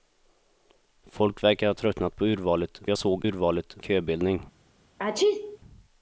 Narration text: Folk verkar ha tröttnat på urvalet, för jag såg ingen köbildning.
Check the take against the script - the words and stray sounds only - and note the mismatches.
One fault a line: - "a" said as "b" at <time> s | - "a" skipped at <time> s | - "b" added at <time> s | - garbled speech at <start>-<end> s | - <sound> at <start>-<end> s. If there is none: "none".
- "för" skipped at 2.8 s
- "ingen" said as "urvalet" at 3.2 s
- sneeze at 5.0-5.6 s